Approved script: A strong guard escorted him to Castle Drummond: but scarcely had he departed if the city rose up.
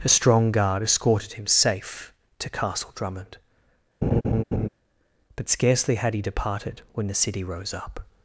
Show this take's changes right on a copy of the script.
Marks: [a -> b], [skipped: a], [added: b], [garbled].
A strong guard escorted him [added: safe] to Castle Drummond: but scarcely had he departed [if -> when] the city rose up.